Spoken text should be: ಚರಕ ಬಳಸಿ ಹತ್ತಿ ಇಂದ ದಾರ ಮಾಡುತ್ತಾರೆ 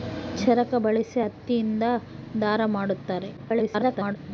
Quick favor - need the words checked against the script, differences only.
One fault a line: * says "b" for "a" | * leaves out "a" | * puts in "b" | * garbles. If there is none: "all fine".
* garbles